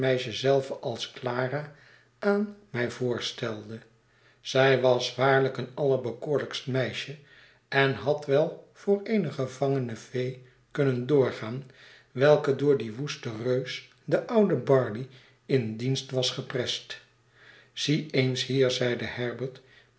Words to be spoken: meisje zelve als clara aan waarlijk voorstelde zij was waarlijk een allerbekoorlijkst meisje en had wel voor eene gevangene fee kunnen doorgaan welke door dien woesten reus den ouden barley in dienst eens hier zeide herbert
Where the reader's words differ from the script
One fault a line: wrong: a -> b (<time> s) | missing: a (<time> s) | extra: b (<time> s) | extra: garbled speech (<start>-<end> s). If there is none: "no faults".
wrong: waarlijk -> mij (2.7 s)
extra: was geprest zie (16.1 s)